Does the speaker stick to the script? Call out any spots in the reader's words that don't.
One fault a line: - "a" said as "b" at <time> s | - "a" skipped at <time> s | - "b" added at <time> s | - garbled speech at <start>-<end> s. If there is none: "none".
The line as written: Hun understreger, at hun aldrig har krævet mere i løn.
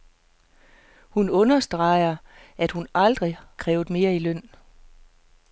- "har" skipped at 3.4 s